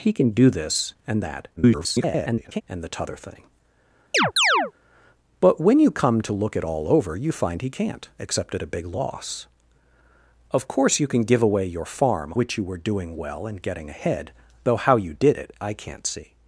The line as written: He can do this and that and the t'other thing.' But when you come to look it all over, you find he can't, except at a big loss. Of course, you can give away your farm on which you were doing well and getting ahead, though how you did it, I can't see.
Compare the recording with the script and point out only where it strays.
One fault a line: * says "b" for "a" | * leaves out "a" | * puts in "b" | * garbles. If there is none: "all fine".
* garbles
* leaves out "on"